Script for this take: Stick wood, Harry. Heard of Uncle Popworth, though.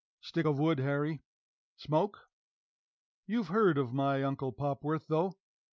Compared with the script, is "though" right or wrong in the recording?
right